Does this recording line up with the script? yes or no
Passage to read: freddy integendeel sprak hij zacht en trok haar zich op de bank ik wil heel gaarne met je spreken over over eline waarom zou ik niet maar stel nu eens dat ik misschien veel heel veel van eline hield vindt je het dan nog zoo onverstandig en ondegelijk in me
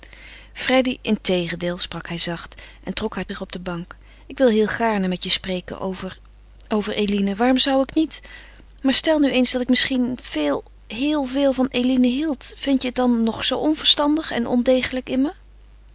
yes